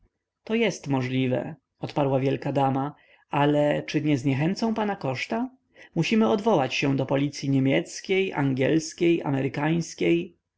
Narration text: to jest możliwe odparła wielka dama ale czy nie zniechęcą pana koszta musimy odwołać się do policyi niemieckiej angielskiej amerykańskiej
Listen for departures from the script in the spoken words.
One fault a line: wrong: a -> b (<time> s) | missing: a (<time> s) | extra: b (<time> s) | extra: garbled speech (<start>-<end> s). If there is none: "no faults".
no faults